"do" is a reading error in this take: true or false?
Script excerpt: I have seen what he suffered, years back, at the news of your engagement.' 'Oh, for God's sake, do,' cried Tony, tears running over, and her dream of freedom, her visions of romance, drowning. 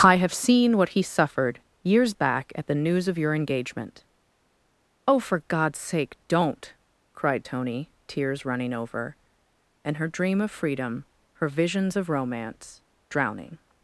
true